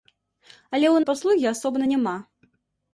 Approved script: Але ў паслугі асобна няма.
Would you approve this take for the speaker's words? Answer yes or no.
yes